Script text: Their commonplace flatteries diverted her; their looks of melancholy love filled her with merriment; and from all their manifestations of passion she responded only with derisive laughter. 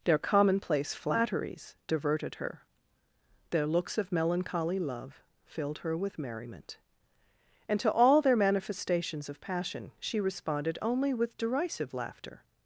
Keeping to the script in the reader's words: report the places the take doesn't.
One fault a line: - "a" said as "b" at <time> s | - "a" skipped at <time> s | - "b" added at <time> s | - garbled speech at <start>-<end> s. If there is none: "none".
- "from" said as "to" at 7.8 s